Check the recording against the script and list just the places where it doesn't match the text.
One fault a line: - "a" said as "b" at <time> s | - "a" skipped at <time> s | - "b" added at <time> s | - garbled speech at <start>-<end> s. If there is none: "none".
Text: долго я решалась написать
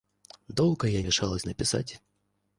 none